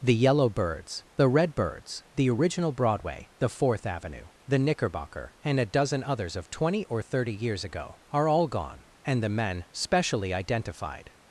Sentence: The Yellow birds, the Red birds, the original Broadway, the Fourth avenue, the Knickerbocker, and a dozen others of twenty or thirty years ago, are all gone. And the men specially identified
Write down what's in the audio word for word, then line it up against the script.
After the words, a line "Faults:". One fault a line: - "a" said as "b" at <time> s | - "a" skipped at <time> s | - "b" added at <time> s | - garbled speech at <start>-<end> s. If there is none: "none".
The Yellow birds, the Red birds, the original Broadway, the Fourth avenue, the Knickerbocker, and a dozen others of twenty or thirty years ago, are all gone. And the men specially identified
Faults:
none